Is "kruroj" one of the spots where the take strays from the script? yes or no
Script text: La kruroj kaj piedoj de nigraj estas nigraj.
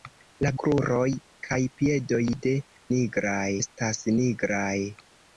no